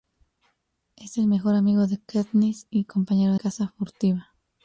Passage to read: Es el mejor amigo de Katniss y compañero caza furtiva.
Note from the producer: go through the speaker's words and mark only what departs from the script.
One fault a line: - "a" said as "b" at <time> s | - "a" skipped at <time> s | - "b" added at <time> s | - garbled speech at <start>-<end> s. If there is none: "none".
none